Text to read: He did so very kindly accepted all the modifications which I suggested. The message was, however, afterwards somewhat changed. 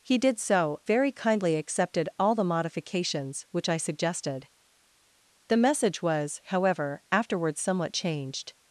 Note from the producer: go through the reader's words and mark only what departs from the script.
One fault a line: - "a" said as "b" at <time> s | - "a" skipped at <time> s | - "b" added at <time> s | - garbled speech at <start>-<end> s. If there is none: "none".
none